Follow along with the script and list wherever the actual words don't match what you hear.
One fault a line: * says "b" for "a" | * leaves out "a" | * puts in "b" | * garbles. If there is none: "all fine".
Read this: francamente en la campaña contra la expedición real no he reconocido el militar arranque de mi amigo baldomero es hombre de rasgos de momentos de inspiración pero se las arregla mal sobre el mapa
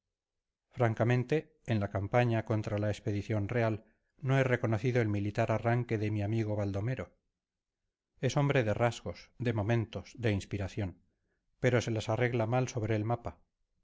all fine